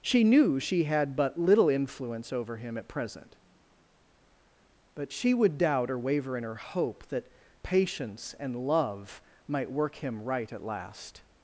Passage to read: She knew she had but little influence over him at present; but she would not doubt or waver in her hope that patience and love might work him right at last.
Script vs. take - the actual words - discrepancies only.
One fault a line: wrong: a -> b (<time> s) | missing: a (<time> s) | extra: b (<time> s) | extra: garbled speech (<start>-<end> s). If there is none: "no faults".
missing: not (5.6 s)